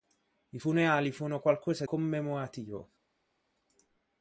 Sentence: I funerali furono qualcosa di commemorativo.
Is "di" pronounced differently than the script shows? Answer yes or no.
yes